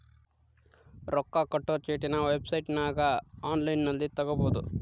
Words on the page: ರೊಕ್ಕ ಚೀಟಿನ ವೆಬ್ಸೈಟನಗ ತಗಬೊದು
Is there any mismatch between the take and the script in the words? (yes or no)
yes